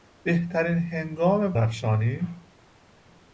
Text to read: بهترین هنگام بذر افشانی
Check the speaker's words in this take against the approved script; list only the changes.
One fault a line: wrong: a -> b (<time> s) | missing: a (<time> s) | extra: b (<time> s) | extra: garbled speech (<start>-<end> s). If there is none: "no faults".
missing: بذر (1.5 s)